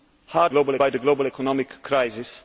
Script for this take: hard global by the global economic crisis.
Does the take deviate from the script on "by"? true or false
false